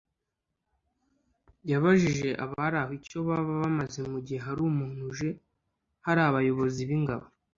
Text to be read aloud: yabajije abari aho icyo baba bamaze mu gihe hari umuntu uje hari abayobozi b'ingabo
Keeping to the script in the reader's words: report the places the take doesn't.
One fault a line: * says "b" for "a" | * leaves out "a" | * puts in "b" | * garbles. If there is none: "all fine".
all fine